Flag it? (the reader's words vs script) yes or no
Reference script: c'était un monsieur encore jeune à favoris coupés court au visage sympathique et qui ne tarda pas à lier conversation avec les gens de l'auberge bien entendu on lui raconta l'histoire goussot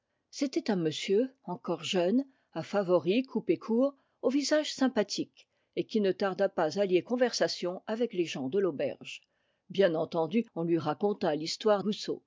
no